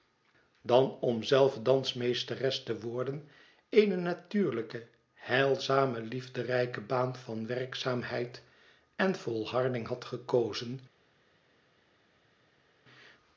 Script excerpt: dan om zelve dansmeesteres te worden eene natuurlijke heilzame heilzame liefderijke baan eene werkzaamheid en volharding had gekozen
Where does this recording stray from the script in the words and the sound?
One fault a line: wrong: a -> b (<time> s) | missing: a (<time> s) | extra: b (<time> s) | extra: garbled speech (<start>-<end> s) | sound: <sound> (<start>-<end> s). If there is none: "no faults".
missing: heilzame (6.0 s)
wrong: eene -> van (7.2 s)